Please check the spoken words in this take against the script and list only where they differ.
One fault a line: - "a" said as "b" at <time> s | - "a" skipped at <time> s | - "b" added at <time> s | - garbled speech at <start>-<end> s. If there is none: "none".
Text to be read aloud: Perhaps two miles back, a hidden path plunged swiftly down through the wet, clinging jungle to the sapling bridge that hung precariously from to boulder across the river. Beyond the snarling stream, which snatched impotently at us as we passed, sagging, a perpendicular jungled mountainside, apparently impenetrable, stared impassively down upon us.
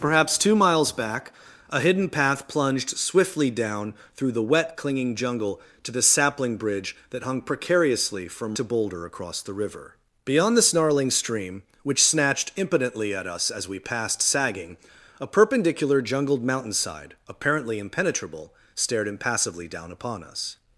none